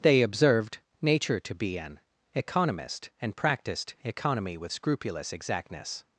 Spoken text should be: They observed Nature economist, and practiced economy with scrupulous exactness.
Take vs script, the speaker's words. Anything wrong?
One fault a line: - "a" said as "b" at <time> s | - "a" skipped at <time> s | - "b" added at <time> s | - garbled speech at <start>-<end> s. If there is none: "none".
- "to be an" added at 1.4 s